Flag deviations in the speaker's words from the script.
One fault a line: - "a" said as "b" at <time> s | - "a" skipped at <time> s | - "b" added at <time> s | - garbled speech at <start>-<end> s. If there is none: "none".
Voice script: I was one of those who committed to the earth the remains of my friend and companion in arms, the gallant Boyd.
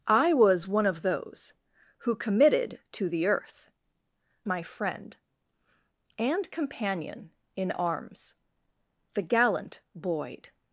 - "the remains of" skipped at 3.7 s